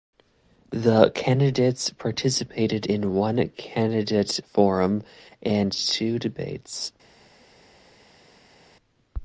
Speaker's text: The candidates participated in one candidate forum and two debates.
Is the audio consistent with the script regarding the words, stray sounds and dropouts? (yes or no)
yes